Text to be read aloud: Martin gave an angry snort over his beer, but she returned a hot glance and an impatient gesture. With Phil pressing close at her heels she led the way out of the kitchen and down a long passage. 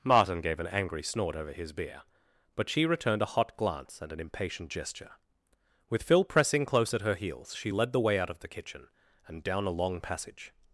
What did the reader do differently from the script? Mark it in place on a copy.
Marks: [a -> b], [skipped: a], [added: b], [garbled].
Martin gave an angry snort over his beer, but she returned a hot glance and an impatient gesture. With Phil pressing close at her heels she led the way out of the kitchen and down a long passage.